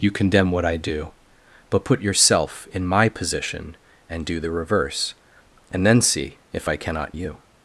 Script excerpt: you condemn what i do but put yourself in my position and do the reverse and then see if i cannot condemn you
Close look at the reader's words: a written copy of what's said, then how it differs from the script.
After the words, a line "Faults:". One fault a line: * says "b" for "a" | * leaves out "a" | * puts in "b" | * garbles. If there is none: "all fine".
you condemn what i do but put yourself in my position and do the reverse and then see if i cannot you
Faults:
* leaves out "condemn"